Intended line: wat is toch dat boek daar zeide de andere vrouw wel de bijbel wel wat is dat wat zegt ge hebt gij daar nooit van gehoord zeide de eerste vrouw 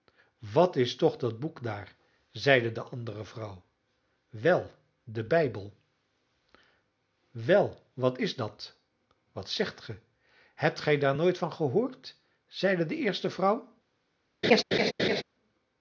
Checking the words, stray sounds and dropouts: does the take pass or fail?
fail